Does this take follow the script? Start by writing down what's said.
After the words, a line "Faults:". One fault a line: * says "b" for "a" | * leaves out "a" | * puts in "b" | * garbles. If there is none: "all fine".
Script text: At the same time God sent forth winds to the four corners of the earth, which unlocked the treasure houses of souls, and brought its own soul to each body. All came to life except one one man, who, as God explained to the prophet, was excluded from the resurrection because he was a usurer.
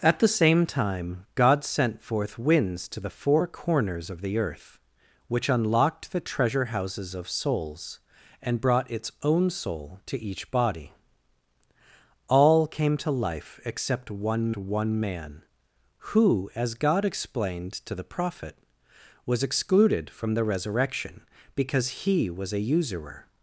At the same time God sent forth winds to the four corners of the earth, which unlocked the treasure houses of souls, and brought its own soul to each body. All came to life except one one man, who, as God explained to the prophet, was excluded from the resurrection because he was a usurer.
Faults:
all fine